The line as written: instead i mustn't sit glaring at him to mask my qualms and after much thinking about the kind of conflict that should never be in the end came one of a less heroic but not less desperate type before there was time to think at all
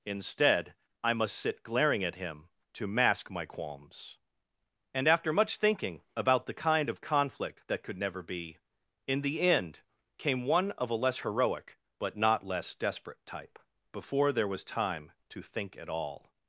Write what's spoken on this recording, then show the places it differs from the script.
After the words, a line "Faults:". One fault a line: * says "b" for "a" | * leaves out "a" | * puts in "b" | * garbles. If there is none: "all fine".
instead i must sit glaring at him to mask my qualms and after much thinking about the kind of conflict that could never be in the end came one of a less heroic but not less desperate type before there was time to think at all
Faults:
* says "must" for "mustn't"
* says "could" for "should"